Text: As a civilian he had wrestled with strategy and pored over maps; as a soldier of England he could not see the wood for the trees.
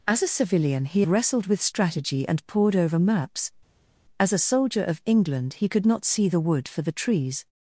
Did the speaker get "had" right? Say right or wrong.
wrong